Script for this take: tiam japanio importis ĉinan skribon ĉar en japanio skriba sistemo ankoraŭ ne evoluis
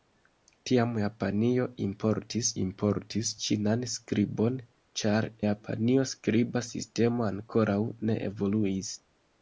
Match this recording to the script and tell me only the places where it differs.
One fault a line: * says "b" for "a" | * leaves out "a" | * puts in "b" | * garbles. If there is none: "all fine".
* puts in "importis"
* leaves out "en"